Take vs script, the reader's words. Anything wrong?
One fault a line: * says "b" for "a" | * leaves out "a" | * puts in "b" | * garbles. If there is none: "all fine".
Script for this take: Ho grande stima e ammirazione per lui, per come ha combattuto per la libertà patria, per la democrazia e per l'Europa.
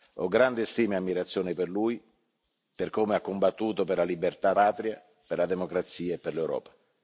all fine